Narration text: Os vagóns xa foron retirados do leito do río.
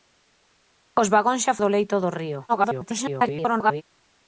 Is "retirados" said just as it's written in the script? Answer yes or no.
no